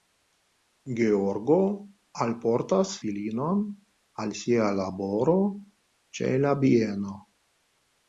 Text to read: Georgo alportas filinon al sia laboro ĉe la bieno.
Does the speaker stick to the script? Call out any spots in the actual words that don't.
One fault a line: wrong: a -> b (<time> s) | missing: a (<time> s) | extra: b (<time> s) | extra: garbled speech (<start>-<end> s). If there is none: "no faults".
no faults